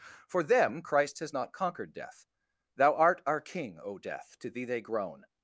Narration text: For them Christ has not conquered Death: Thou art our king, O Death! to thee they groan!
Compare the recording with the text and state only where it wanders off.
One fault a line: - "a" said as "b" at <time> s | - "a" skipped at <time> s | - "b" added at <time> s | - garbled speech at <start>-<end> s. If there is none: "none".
none